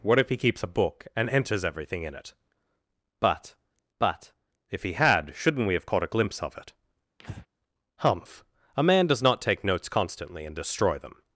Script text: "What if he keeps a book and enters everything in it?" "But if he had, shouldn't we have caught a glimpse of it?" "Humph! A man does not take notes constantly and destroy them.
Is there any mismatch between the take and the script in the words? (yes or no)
yes